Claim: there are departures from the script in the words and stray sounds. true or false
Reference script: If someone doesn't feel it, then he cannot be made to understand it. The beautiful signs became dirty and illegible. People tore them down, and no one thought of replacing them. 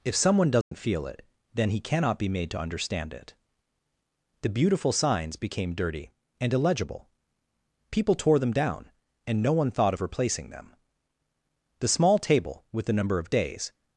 true